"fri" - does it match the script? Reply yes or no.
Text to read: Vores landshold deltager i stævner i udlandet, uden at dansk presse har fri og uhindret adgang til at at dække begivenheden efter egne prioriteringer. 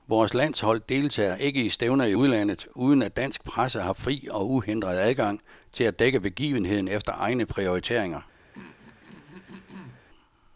yes